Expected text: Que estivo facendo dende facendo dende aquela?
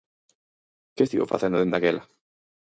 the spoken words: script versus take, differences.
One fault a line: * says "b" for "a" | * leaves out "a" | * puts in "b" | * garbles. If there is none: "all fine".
* leaves out "facendo dende"